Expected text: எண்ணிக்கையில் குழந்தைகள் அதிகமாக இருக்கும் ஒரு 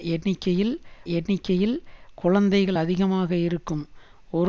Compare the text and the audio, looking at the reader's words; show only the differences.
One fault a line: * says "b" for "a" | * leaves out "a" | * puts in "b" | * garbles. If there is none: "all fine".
* puts in "எண்ணிக்கையில்"